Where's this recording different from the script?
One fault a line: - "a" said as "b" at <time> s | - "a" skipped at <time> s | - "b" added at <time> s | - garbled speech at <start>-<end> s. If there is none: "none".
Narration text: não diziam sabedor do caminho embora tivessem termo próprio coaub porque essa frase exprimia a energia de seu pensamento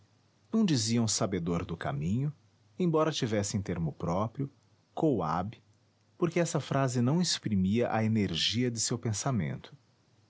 - "não" added at 7.0 s